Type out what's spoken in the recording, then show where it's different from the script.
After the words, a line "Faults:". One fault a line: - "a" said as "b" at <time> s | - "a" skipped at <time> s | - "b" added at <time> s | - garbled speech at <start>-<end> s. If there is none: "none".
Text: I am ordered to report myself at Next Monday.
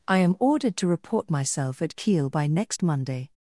I am ordered to report myself at Kiel by next Monday.
Faults:
- "Kiel by" added at 2.0 s